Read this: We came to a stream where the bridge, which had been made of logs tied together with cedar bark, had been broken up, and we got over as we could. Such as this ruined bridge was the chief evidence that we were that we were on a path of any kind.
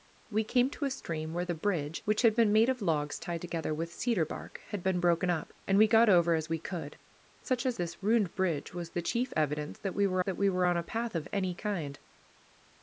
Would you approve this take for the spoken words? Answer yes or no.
yes